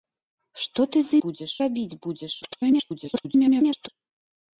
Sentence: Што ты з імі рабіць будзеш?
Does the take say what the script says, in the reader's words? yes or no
no